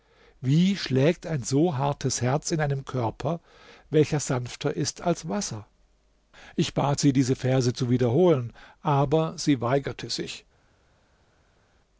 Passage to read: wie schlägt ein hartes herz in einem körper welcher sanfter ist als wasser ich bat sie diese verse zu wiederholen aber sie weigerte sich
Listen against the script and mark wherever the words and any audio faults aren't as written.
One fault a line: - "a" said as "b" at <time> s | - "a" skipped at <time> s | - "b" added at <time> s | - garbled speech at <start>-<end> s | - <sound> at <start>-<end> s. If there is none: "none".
- "so" added at 1.4 s